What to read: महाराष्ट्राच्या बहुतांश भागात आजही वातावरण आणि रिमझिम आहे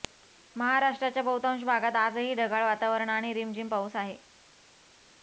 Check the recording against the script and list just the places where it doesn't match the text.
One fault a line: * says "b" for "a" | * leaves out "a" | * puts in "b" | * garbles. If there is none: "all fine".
* puts in "ढगाळ"
* puts in "पाऊस"